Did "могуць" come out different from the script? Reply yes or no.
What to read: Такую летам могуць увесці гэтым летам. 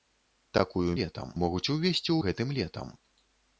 no